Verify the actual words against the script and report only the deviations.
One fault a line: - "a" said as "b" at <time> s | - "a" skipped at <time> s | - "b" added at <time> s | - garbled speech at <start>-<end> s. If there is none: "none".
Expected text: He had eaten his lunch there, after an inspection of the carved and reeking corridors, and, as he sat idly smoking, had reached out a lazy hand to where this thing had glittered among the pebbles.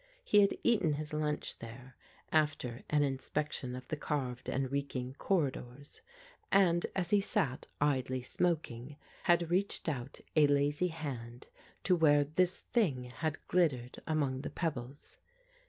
none